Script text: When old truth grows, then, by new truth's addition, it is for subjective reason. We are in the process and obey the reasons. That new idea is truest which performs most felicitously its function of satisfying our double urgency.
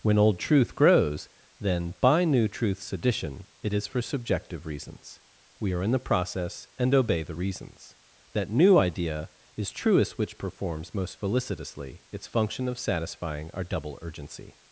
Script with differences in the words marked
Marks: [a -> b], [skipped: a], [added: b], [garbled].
When old truth grows, then, by new truth's addition, it is for subjective [reason. -> reasons] We are in the process and obey the reasons. That new idea is truest which performs most felicitously its function of satisfying our double urgency.